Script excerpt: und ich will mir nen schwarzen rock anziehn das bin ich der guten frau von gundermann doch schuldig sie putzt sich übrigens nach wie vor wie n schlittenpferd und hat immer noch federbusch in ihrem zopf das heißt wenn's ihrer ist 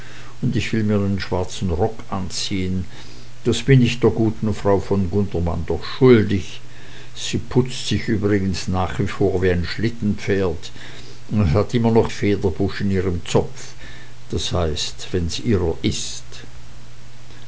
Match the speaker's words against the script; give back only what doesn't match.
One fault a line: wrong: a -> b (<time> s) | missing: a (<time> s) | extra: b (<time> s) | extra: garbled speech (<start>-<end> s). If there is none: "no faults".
no faults